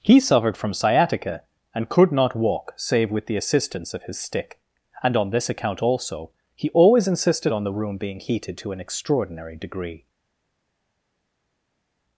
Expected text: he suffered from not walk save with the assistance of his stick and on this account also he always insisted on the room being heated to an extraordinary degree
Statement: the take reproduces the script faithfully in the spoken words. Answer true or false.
false